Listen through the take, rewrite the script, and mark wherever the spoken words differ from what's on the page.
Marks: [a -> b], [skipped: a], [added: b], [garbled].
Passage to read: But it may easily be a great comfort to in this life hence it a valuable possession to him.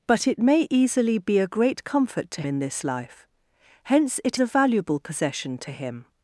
But it may easily be a great comfort to in this life hence it a valuable possession to him.